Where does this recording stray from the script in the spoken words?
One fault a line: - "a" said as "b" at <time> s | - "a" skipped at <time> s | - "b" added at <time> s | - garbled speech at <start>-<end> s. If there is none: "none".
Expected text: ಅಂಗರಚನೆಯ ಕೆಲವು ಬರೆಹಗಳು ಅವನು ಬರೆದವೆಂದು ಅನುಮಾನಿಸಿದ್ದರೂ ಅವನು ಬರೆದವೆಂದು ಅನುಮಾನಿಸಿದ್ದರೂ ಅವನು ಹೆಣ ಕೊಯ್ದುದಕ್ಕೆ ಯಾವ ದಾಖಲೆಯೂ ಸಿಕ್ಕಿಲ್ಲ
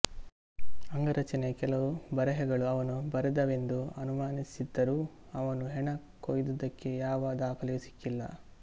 - "ಬರೆದವೆಂದು ಅನುಮಾನಿಸಿದ್ದರೂ ಅವನು" skipped at 5.7 s